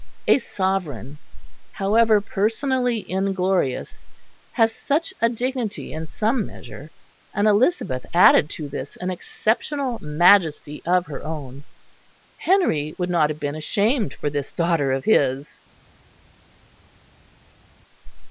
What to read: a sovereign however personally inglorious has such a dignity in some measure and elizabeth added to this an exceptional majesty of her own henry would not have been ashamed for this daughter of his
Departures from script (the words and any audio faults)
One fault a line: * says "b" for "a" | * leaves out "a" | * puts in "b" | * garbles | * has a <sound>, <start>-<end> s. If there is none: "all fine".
all fine